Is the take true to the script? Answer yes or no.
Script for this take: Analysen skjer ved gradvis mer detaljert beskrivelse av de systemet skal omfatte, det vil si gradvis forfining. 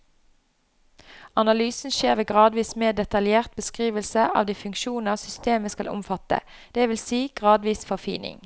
no